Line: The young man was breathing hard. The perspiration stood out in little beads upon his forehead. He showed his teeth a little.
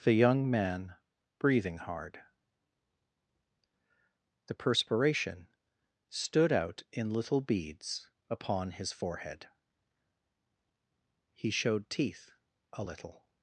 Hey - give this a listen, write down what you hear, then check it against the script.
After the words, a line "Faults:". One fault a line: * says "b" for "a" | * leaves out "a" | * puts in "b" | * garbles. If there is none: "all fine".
The young man breathing hard. The perspiration stood out in little beads upon his forehead. He showed teeth a little.
Faults:
* leaves out "was"
* leaves out "his"